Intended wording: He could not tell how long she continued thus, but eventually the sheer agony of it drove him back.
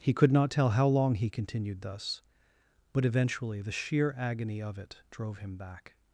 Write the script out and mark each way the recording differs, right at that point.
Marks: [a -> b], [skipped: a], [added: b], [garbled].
He could not tell how long [she -> he] continued thus, but eventually the sheer agony of it drove him back.